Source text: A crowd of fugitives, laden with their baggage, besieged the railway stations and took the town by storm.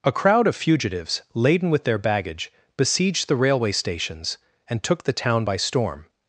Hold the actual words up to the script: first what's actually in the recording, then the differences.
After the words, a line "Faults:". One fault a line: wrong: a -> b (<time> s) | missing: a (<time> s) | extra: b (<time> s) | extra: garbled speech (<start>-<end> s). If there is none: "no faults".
A crowd of fugitives, laden with their baggage, besieged the railway stations and took the town by storm.
Faults:
no faults